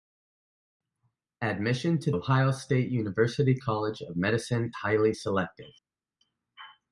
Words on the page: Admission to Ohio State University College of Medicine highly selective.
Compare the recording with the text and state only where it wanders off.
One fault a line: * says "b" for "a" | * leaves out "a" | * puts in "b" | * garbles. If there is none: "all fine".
all fine